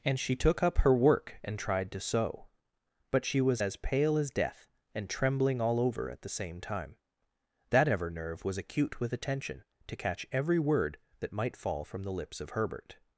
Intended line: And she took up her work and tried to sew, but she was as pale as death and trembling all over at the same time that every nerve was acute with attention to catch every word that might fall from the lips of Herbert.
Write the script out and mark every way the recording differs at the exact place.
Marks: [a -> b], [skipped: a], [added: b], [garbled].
And she took up her work and tried to sew, but she was as pale as death and trembling all over at the same time that [every -> ever] nerve was acute with attention to catch every word that might fall from the lips of Herbert.